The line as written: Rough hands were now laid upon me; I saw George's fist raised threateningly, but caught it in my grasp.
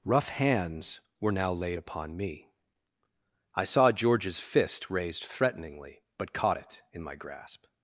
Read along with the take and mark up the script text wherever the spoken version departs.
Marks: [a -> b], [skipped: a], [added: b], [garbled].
Rough hands were now laid upon me; I saw George's fist raised threateningly, but caught it in my grasp.